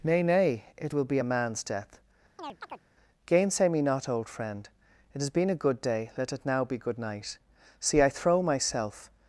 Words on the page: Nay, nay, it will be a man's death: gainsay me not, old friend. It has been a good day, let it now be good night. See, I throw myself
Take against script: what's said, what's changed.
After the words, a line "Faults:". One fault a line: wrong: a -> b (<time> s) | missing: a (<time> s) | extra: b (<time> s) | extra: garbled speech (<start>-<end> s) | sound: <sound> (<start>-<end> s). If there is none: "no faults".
Nay, nay, it will be a man's death: gainsay me not, old friend. It has been a good day, let it now be good night. See, I throw myself
Faults:
sound: chirp (2.4-2.8 s)